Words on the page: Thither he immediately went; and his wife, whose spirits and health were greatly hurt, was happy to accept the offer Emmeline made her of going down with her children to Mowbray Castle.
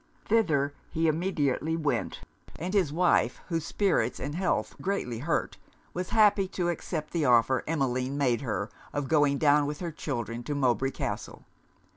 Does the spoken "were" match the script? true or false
false